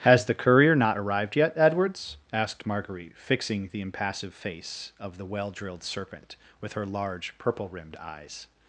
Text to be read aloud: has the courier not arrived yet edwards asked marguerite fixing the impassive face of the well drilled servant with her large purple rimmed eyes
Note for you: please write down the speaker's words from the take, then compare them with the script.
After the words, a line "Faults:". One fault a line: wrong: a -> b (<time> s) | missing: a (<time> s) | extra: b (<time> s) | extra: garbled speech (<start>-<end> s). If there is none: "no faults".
has the courier not arrived yet edwards asked marguerite fixing the impassive face of the well drilled serpent with her large purple rimmed eyes
Faults:
wrong: servant -> serpent (5.8 s)